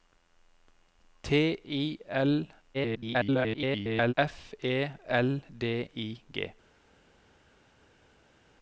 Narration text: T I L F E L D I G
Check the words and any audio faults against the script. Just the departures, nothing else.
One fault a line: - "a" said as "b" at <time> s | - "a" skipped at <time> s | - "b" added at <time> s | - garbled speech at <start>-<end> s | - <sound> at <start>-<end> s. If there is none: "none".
- garbled speech at 2.7-4.1 s